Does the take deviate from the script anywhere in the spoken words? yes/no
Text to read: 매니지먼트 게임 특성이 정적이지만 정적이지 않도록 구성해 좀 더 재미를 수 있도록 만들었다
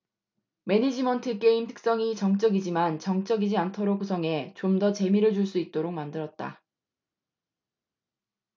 yes